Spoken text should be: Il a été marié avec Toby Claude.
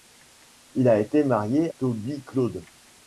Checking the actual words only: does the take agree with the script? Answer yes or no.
no